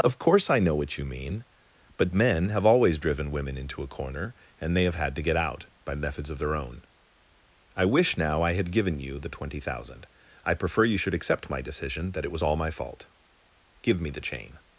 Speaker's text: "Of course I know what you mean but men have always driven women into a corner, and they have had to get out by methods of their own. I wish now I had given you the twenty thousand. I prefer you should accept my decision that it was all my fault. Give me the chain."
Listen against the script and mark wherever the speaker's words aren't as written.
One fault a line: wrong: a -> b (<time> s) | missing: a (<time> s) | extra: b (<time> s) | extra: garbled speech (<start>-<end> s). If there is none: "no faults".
no faults